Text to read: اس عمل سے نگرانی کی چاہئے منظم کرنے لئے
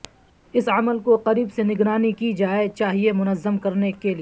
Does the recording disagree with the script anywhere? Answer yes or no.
yes